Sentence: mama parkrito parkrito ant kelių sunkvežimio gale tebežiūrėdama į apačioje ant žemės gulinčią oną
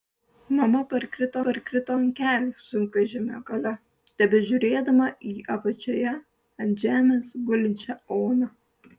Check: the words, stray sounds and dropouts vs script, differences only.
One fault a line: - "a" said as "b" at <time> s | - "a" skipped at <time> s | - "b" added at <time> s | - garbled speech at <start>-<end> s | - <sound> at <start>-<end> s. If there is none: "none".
none